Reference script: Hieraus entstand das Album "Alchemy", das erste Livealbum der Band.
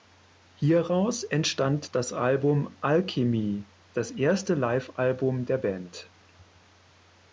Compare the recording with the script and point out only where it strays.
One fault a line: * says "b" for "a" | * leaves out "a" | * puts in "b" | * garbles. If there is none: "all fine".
all fine